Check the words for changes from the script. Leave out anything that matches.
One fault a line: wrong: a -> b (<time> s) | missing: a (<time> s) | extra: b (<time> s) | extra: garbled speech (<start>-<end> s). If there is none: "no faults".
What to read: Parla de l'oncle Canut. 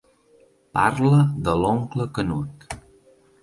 no faults